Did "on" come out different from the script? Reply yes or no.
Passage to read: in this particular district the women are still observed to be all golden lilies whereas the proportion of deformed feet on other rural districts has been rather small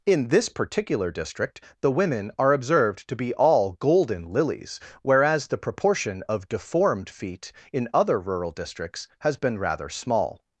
yes